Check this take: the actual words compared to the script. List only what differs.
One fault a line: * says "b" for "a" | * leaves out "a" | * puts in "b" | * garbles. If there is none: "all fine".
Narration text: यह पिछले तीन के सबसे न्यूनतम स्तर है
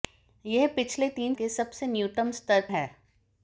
all fine